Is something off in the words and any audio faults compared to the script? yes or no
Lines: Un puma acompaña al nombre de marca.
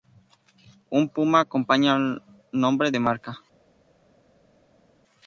no